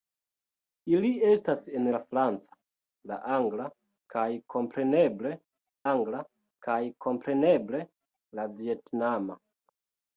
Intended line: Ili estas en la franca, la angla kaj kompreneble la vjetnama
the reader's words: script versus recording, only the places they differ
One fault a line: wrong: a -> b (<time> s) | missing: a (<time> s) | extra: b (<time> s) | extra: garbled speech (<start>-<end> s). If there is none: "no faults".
extra: angla kaj kompreneble (5.9 s)